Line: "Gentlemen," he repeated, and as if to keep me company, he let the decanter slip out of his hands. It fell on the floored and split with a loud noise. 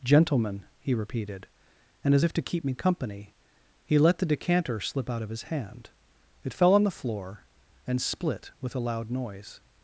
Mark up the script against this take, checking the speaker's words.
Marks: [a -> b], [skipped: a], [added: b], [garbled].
"Gentlemen," he repeated, and as if to keep me company, he let the decanter slip out of his [hands. -> hand] It fell on the [floored -> floor] and split with a loud noise.